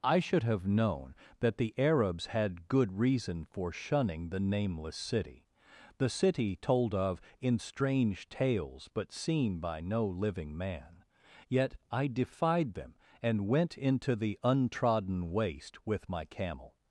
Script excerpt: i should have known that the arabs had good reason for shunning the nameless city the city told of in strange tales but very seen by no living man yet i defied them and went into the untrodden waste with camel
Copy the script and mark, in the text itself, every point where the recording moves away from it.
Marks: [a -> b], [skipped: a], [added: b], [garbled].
i should have known that the arabs had good reason for shunning the nameless city the city told of in strange tales but [skipped: very] seen by no living man yet i defied them and went into the untrodden waste with [added: my] camel